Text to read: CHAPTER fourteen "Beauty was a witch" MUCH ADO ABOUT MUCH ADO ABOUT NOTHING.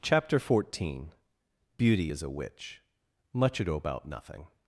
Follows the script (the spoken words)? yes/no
no